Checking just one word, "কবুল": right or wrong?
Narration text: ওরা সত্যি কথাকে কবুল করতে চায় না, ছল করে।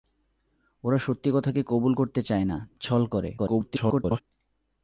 right